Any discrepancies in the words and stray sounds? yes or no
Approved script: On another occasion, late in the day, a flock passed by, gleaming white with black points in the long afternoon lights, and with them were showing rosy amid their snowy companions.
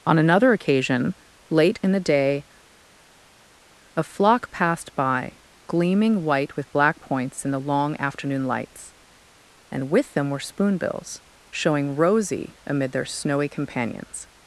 yes